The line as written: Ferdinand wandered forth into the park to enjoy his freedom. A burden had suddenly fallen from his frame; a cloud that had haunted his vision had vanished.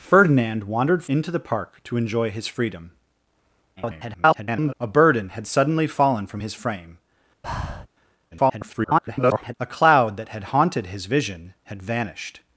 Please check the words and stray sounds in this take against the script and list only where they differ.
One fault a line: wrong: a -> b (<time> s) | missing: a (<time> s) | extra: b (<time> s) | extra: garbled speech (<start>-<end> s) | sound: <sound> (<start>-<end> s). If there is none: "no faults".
missing: forth (1.1 s)
extra: garbled speech (3.8-4.7 s)
sound: breath (7.4-7.9 s)
extra: garbled speech (8.3-9.5 s)